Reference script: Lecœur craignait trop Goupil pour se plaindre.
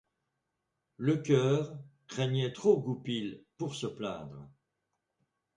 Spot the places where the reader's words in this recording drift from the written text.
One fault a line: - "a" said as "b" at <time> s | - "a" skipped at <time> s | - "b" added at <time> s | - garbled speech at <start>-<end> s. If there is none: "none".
none